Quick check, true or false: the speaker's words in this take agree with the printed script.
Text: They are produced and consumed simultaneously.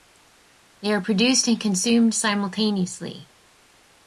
true